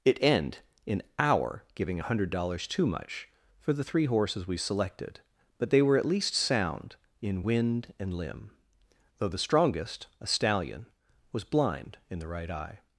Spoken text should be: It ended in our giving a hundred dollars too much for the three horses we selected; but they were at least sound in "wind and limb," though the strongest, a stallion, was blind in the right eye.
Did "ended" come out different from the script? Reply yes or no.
yes